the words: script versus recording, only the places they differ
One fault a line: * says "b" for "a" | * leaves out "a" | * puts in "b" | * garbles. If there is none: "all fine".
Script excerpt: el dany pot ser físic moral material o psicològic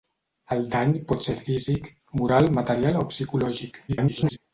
* garbles